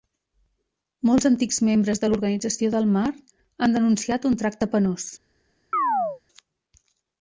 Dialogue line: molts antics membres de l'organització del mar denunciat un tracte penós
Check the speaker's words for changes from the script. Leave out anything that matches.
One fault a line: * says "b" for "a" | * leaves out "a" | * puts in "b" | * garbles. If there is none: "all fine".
* puts in "han"